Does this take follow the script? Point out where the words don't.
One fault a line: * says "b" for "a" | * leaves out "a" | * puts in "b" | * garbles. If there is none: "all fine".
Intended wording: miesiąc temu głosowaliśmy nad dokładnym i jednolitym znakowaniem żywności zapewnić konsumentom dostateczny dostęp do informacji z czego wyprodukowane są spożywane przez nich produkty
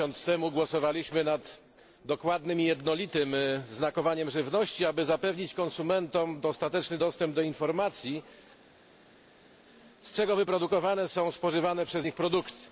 * puts in "aby"